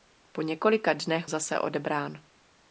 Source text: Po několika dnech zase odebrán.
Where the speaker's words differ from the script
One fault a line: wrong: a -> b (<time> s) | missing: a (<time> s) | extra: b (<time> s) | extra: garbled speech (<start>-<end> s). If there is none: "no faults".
no faults